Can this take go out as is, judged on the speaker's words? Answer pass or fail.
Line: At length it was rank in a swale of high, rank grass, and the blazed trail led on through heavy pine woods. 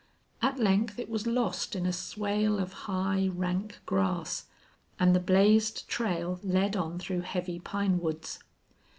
fail